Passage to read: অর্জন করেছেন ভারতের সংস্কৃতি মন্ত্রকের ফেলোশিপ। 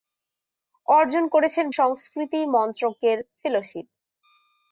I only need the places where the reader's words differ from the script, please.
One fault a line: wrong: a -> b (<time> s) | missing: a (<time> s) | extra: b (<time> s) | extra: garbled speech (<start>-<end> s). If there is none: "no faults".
missing: ভারতের (1.6 s)